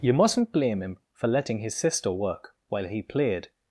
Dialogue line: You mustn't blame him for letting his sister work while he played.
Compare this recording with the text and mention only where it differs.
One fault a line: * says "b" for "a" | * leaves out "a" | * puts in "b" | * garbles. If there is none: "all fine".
all fine